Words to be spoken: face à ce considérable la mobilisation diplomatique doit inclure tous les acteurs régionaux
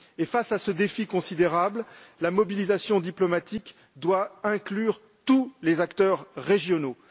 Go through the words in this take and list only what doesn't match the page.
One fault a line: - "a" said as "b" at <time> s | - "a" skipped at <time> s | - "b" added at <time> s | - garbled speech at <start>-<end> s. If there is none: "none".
- "défi" added at 0.7 s